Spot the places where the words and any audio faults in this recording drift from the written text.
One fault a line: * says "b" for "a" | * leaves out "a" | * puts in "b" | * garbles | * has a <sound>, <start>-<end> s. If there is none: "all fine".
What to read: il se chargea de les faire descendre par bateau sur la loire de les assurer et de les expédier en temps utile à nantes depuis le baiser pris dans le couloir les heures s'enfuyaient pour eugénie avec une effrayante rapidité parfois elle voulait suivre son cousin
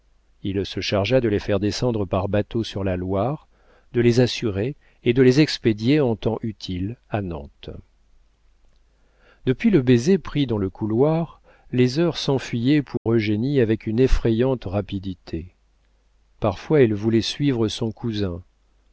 * has a dropout, 13.0-13.1 s